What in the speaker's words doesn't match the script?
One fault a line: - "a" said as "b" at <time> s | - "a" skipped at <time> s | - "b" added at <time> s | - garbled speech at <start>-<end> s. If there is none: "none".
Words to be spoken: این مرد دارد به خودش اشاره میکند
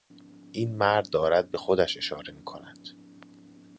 none